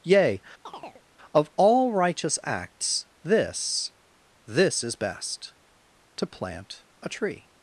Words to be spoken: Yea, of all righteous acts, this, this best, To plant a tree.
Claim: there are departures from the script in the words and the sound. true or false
true